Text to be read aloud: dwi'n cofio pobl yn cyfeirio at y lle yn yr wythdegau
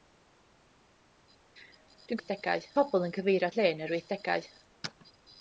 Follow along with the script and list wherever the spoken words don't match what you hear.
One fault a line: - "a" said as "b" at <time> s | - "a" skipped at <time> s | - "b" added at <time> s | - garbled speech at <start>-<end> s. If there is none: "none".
- "cofio" said as "wythdegau" at 2.2 s
- "at" skipped at 3.5 s